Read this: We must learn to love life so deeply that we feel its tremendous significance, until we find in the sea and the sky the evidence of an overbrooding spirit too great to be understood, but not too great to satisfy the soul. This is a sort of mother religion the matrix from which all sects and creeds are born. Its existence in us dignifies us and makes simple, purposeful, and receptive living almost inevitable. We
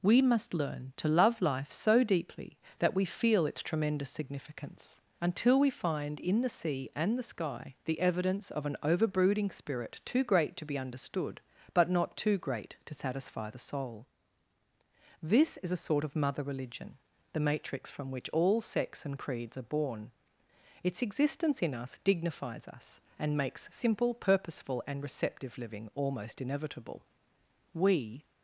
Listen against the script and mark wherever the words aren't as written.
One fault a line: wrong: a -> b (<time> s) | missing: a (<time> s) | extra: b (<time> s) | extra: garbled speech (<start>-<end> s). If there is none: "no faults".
no faults